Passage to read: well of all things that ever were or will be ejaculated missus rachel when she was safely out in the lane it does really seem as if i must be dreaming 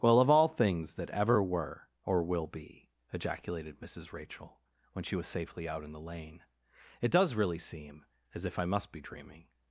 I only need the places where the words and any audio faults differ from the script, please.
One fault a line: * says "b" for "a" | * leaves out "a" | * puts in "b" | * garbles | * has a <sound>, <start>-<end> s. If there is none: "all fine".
all fine